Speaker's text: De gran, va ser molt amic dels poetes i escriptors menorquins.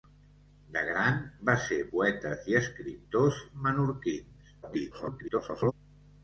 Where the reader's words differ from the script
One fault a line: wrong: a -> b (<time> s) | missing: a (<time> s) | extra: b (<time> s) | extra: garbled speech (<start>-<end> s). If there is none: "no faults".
missing: molt amic dels (1.8 s)
extra: garbled speech (4.6-5.7 s)